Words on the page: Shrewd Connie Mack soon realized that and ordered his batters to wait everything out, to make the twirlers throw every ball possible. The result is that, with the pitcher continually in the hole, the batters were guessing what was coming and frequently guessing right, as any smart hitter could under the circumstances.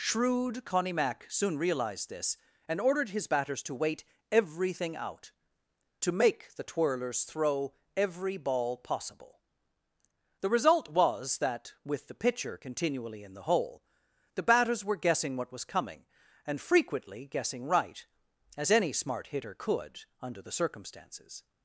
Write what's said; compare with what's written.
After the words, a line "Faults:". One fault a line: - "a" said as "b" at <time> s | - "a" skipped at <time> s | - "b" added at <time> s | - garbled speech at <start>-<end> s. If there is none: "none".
Shrewd Connie Mack soon realized this and ordered his batters to wait everything out, to make the twirlers throw every ball possible. The result was that, with the pitcher continually in the hole, the batters were guessing what was coming and frequently guessing right, as any smart hitter could under the circumstances.
Faults:
- "that" said as "this" at 2.1 s
- "is" said as "was" at 10.9 s